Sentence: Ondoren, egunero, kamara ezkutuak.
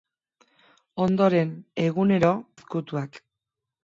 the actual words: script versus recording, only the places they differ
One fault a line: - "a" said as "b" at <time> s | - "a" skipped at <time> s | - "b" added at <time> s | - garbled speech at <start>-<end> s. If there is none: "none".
- "kamara" skipped at 2.3 s